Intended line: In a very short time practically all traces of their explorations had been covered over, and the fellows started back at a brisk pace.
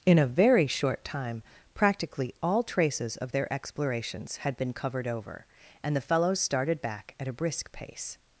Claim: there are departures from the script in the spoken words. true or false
false